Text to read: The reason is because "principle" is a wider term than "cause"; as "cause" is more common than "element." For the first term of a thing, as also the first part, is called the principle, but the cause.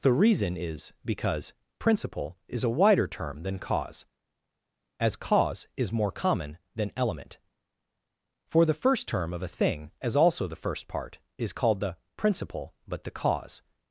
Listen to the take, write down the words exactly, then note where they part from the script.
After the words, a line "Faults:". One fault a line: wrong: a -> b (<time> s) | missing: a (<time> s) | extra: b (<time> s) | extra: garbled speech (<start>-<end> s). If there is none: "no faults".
The reason is because "principle" is a wider term than "cause"; as "cause" is more common than "element." For the first term of a thing, as also the first part, is called the principle, but the cause.
Faults:
no faults